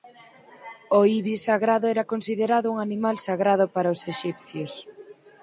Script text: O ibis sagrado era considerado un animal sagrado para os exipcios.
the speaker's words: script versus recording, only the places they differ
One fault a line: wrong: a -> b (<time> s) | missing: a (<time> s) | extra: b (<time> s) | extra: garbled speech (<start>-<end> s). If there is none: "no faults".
no faults